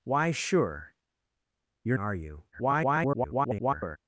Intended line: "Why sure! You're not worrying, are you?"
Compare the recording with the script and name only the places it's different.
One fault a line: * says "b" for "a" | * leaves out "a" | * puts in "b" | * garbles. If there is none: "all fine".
* leaves out "not worrying"
* garbles